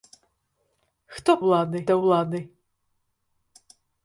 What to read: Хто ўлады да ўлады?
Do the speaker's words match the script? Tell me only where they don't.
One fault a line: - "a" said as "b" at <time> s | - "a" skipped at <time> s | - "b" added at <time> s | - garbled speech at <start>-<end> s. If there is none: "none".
none